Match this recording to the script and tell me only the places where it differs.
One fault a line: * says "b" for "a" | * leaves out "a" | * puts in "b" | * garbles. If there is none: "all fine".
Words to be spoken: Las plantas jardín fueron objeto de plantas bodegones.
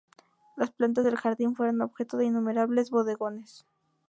* puts in "del"
* says "innumerables" for "plantas"